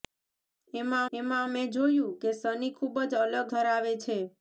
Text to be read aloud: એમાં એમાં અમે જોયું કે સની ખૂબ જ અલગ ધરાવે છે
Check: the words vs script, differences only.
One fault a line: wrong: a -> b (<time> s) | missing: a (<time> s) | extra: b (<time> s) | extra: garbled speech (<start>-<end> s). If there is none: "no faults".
no faults